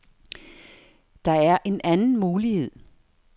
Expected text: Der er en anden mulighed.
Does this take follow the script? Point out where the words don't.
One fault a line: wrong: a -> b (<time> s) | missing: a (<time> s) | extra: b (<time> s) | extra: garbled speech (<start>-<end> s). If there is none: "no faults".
no faults